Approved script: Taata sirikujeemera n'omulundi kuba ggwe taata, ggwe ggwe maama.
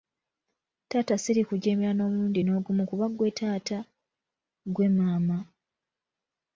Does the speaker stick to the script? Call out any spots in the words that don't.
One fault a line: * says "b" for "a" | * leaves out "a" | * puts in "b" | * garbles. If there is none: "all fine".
* puts in "n'ogumu"
* leaves out "ggwe"